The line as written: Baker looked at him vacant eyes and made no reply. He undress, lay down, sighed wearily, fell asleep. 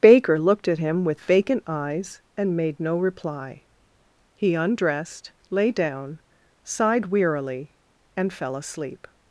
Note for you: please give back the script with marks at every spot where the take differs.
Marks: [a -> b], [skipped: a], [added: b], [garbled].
Baker looked at him [added: with] vacant eyes and made no reply. He [undress, -> undressed] lay down, sighed wearily, [added: and] fell asleep.